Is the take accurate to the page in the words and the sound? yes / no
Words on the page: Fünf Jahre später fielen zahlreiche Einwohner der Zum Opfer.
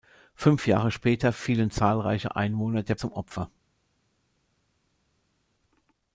yes